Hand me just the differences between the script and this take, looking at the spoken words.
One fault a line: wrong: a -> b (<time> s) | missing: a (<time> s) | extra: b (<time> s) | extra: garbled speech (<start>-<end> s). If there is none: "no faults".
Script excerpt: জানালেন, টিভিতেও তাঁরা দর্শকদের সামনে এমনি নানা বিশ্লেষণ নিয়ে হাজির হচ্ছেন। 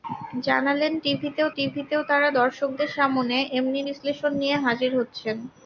extra: টিভিতেও (1.6 s)
missing: নানা (3.8 s)